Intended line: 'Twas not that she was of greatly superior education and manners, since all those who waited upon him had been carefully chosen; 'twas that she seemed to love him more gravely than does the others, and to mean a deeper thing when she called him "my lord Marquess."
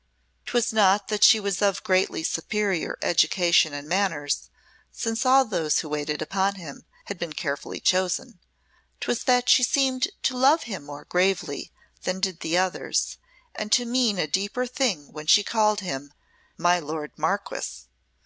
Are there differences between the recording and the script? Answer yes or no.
yes